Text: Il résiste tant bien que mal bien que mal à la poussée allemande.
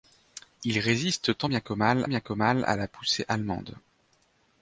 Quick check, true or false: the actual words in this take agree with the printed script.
true